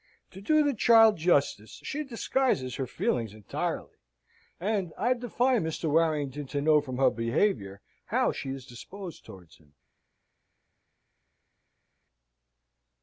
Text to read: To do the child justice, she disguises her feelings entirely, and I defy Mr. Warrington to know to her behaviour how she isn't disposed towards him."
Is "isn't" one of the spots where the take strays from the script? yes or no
yes